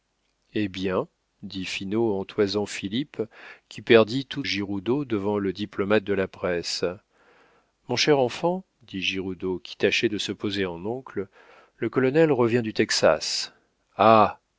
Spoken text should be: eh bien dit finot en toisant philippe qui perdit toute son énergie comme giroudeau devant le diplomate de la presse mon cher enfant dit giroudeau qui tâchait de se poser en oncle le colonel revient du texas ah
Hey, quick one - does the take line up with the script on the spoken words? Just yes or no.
no